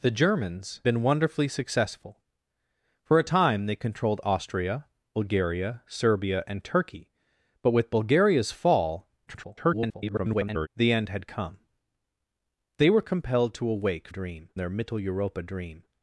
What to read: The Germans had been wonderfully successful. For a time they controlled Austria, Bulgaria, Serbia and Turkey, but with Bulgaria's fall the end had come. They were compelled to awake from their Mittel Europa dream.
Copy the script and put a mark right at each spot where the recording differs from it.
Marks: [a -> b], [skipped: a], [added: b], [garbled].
The Germans [skipped: had] been wonderfully successful. For a time they controlled Austria, Bulgaria, Serbia and Turkey, but with Bulgaria's fall [garbled] the end had come. They were compelled to awake [from -> dream] their Mittel Europa dream.